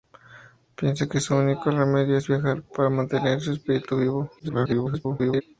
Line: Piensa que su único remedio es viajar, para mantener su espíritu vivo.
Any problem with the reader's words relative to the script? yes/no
yes